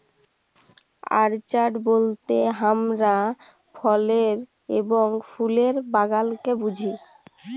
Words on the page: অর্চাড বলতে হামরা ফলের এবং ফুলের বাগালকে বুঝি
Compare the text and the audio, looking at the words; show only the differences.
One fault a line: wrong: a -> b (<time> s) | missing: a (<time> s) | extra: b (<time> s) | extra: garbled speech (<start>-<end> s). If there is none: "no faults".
no faults